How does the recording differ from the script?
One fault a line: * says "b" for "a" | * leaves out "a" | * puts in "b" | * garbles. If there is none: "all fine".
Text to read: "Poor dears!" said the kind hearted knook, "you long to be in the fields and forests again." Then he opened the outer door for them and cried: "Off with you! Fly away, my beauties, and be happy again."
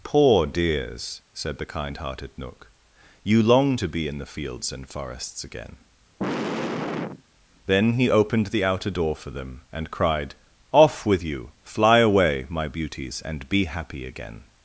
all fine